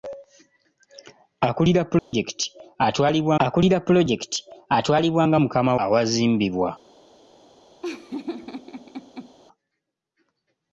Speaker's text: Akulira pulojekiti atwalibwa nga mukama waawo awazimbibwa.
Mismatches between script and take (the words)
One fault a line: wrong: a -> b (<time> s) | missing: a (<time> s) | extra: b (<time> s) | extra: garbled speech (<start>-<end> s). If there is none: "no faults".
extra: akulira pulojekiti atwalibwa (3.4 s)
missing: waawo (5.7 s)